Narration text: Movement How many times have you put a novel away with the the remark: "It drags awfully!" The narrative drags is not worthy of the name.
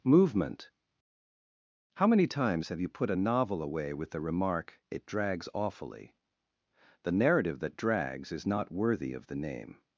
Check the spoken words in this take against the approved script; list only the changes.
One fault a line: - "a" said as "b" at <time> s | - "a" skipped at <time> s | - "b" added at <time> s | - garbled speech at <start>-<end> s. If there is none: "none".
- "the" skipped at 4.2 s
- "that" added at 7.6 s